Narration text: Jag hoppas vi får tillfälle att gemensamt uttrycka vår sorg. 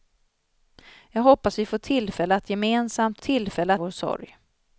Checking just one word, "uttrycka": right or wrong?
wrong